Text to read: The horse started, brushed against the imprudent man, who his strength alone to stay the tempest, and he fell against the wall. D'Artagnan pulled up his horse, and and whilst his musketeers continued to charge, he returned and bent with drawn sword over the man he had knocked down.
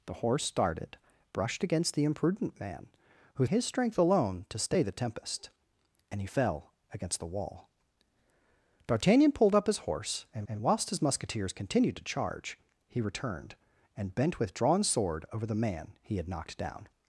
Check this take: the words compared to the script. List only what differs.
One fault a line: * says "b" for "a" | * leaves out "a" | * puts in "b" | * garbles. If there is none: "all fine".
all fine